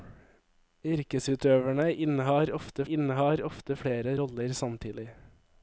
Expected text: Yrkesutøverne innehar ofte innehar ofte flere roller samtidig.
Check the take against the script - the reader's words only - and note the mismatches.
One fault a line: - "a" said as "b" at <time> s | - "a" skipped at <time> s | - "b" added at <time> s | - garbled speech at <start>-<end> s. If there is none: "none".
none